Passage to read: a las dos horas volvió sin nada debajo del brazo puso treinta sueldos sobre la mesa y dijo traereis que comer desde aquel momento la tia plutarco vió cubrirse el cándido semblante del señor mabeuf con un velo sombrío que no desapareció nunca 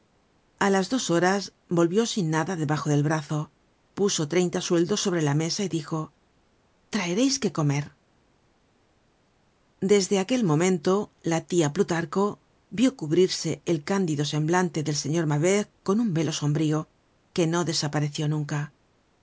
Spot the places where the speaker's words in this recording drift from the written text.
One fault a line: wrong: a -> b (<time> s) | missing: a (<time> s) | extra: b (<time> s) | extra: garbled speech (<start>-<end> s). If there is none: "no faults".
no faults